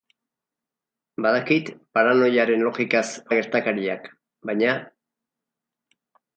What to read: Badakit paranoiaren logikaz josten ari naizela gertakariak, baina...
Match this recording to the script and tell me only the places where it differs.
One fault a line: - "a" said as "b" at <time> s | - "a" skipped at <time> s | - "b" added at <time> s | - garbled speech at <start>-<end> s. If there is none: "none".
- "josten ari naizela" skipped at 3.0 s